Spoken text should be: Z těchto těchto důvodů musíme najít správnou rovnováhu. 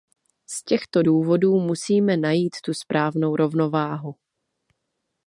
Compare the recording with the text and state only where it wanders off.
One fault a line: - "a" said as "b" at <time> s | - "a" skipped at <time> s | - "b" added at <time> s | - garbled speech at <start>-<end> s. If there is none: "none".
- "těchto" skipped at 1.0 s
- "tu" added at 2.6 s